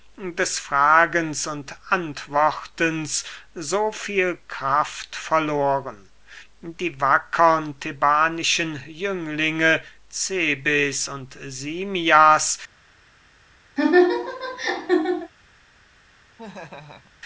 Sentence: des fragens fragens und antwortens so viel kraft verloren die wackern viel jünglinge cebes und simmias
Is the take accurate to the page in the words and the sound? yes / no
no